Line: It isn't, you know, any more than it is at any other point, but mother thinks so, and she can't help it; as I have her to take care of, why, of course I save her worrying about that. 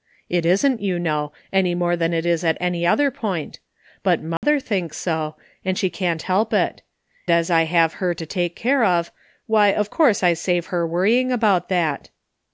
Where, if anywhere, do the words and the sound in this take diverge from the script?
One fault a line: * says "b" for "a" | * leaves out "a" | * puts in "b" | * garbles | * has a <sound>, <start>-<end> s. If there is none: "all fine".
* has a dropout, 4.4-4.4 s